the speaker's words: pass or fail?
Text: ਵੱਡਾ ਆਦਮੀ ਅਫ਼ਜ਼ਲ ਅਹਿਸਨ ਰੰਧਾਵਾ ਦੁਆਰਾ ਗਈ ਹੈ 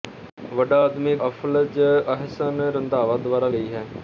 pass